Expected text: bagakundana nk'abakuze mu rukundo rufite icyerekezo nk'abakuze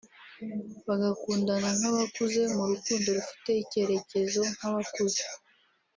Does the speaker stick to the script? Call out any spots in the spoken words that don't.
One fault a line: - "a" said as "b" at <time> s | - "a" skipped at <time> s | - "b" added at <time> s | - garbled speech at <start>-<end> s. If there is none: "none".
none